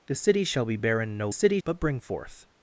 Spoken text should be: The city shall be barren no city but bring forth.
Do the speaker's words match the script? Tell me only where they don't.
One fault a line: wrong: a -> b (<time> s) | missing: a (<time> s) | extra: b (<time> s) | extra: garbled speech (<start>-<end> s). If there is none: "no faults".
no faults